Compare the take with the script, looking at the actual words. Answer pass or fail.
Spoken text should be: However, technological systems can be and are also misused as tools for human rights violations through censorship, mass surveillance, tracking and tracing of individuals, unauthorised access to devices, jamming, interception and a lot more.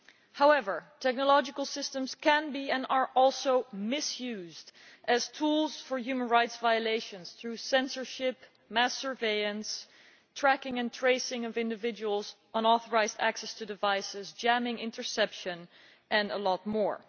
pass